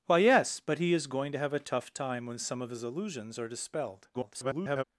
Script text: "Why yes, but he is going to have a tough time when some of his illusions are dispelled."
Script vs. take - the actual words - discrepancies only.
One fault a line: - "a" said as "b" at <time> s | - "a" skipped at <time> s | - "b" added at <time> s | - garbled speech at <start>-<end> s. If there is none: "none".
- garbled speech at 4.1-4.8 s